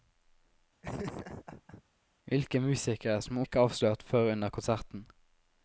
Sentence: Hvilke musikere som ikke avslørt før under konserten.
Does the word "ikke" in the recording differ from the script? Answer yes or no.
no